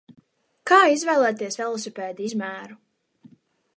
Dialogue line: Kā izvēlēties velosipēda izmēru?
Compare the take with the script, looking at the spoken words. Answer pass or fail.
pass